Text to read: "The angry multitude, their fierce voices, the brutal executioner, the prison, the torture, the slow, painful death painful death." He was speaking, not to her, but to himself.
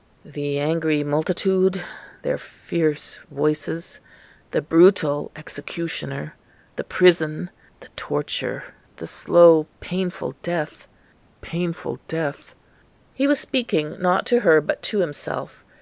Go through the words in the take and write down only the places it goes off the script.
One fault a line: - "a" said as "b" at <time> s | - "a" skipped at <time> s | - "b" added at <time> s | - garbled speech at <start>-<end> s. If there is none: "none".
none